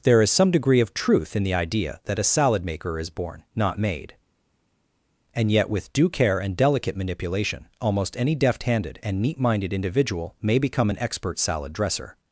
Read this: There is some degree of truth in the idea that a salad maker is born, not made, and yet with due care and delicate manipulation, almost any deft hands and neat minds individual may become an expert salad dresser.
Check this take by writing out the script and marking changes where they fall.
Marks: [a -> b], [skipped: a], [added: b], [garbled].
There is some degree of truth in the idea that a salad maker is born, not made, and yet with due care and delicate manipulation, almost any deft [hands -> handed] and neat [minds -> minded] individual may become an expert salad dresser.